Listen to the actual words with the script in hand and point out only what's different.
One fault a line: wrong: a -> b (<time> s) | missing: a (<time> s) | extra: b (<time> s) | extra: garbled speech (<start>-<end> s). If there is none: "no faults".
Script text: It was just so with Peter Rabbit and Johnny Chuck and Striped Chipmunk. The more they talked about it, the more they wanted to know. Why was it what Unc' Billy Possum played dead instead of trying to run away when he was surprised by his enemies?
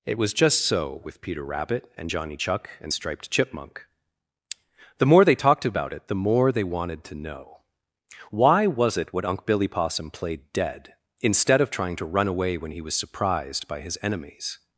no faults